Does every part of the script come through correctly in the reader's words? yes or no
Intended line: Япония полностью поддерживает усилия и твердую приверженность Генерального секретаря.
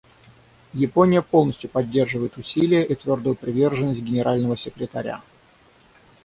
yes